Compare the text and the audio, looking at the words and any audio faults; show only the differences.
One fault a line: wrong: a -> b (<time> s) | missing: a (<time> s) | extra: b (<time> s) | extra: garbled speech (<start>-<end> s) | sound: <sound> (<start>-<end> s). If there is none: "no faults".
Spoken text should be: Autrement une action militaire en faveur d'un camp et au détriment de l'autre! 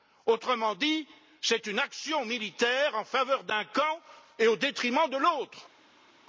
extra: dit c'est (0.8 s)